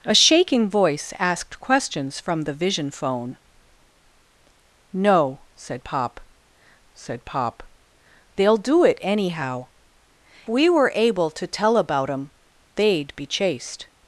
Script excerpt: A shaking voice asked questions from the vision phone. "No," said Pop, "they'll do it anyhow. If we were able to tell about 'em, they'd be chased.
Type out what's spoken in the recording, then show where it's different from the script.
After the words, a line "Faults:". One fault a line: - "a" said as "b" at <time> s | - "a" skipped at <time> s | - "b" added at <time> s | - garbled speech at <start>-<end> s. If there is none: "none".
A shaking voice asked questions from the vision phone. "No," said Pop said Pop, "they'll do it anyhow. We were able to tell about 'em, they'd be chased.
Faults:
- "said Pop" added at 6.9 s
- "If" skipped at 9.7 s